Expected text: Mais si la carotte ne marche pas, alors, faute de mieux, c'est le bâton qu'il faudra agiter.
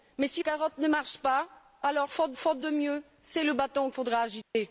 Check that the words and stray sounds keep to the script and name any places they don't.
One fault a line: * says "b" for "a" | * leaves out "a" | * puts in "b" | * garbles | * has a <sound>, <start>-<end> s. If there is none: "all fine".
* leaves out "la"
* puts in "faute"
* leaves out "qu'il"
* has a dropout, 4.4-4.5 s